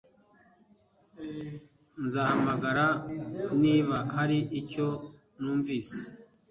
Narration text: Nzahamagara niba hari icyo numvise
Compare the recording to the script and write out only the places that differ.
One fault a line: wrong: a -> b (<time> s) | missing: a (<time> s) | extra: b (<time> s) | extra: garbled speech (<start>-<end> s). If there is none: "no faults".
no faults